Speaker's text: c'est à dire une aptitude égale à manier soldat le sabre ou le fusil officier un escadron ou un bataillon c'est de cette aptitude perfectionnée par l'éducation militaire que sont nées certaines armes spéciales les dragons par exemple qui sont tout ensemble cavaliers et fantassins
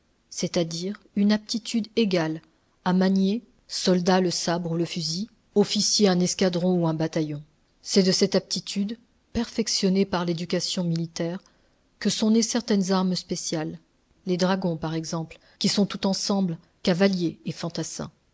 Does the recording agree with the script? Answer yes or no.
yes